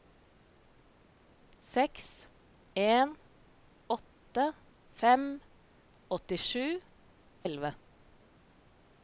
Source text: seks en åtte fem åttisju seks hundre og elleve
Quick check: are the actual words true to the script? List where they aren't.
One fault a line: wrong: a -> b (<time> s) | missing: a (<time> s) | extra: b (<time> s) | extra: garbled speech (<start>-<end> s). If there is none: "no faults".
missing: seks hundre (6.7 s)